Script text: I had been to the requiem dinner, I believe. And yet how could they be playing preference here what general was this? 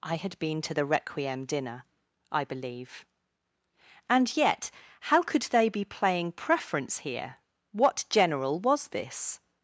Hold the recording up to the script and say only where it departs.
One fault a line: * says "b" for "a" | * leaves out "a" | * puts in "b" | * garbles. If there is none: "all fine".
all fine